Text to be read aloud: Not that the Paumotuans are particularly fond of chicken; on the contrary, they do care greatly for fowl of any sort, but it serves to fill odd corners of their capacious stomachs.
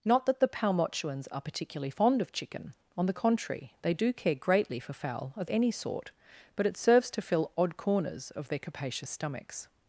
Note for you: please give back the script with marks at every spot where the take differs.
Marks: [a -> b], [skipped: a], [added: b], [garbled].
Not that the Paumotuans are particularly fond of chicken; on the contrary, they do care greatly for fowl of any sort, but it serves to fill odd corners of their capacious stomachs.